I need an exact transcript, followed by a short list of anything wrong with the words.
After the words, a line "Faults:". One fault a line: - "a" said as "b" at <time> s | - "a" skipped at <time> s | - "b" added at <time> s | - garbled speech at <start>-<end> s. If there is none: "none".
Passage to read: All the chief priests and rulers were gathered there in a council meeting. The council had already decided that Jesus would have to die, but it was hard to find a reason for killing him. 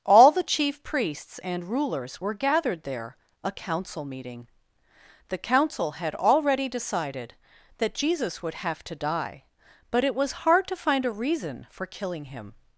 All the chief priests and rulers were gathered there a council meeting. The council had already decided that Jesus would have to die, but it was hard to find a reason for killing him.
Faults:
- "in" skipped at 3.2 s